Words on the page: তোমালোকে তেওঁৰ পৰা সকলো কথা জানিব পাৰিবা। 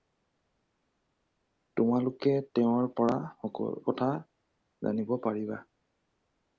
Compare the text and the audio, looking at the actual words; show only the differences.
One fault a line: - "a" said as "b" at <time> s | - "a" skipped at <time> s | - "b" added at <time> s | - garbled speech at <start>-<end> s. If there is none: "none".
- "সকলো" skipped at 3.2 s